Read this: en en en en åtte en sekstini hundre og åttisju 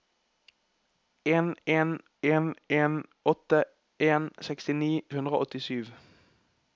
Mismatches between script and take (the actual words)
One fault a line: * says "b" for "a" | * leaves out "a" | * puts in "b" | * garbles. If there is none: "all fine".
all fine